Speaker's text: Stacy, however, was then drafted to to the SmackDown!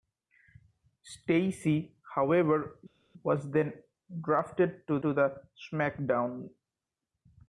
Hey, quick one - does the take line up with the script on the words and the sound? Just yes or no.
yes